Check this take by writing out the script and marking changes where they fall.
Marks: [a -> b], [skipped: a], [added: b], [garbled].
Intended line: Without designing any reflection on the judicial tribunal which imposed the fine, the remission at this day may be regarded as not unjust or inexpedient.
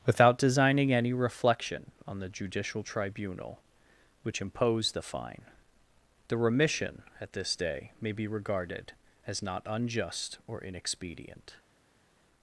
Without designing any reflection on the judicial tribunal which imposed the fine, the remission at this day may be regarded as not unjust or inexpedient.